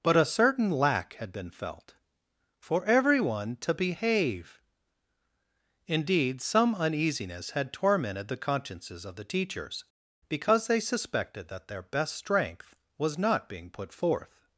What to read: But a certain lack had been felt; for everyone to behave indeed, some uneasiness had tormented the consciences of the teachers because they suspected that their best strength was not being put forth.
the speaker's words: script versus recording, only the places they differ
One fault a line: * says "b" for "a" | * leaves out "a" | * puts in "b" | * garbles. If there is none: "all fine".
all fine